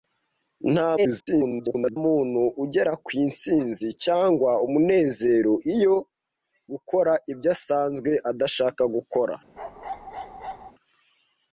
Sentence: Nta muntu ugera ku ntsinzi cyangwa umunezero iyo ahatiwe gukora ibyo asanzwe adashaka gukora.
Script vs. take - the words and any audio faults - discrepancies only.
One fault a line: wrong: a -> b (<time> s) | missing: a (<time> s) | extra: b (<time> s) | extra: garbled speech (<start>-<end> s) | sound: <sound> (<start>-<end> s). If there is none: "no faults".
extra: garbled speech (1.0-2.0 s)
missing: ahatiwe (6.0 s)
sound: bark (9.6-10.7 s)